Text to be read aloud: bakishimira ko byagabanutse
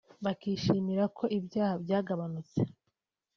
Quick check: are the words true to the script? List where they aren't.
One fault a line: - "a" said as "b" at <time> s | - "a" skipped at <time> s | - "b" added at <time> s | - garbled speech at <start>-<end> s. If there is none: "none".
- "ibyaha" added at 1.4 s